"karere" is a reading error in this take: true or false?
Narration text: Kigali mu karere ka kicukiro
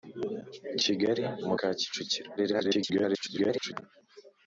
true